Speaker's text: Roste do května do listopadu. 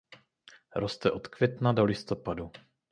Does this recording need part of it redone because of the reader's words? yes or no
yes